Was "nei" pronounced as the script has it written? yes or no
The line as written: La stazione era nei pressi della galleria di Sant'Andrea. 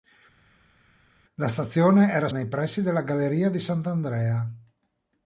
yes